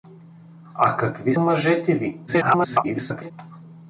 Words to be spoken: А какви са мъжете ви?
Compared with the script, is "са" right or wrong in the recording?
wrong